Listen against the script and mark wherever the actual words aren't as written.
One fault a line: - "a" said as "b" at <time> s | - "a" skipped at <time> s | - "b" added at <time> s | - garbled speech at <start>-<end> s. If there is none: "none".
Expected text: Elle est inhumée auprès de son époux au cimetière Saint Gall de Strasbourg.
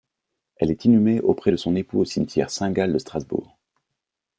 none